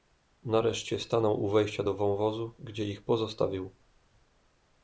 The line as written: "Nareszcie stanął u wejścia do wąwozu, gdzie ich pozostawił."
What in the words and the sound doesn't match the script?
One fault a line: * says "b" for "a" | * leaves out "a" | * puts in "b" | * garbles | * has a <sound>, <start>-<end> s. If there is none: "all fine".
all fine